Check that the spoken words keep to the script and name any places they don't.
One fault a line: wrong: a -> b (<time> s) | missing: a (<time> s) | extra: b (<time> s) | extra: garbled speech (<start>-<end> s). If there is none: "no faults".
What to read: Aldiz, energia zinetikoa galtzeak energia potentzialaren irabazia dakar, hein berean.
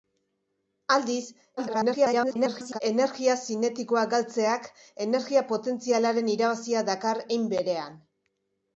extra: garbled speech (1.6-2.8 s)